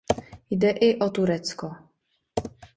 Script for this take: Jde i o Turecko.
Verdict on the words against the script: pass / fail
pass